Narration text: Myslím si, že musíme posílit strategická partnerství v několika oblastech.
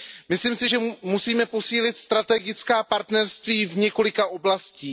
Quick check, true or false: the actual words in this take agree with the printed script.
true